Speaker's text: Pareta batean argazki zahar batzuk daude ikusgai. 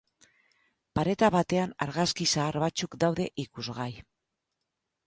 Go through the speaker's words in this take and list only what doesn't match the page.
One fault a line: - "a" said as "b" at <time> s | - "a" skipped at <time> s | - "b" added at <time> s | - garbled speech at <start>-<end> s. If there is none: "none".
none